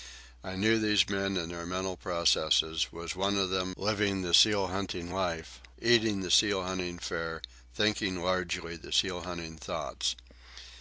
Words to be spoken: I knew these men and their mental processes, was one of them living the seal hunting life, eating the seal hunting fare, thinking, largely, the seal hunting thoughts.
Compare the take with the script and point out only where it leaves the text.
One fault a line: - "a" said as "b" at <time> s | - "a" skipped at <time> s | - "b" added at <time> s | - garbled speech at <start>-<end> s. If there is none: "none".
none